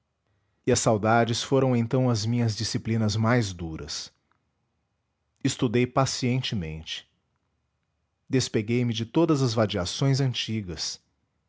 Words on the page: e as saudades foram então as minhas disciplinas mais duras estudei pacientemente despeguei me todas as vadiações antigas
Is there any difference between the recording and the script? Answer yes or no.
yes